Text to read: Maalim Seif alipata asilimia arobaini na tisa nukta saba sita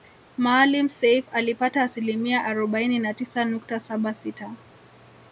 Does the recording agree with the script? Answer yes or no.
yes